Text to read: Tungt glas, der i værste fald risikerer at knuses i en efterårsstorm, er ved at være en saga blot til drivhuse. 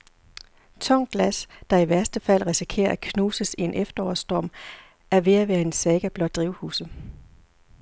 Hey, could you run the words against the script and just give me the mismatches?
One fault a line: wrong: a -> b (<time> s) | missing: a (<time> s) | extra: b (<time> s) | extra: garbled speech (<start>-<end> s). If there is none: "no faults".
missing: til (6.3 s)